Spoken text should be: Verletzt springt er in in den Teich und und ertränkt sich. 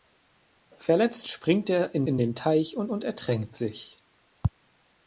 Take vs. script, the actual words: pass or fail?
pass